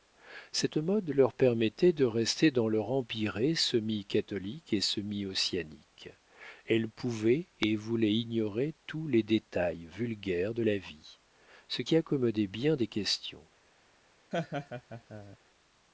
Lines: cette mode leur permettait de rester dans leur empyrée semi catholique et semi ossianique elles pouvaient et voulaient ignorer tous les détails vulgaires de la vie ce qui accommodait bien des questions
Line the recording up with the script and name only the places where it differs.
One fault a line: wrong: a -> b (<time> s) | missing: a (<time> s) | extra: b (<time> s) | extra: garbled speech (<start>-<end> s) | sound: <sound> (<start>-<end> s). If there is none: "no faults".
sound: laugh (14.3-15.4 s)